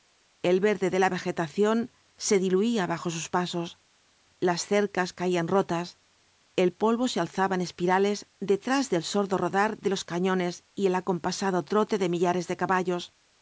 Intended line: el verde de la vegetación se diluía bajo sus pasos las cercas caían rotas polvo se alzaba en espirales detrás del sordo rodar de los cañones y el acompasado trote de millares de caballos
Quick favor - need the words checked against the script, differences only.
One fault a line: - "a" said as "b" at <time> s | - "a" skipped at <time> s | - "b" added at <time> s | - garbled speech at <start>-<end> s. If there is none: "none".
- "el" added at 6.5 s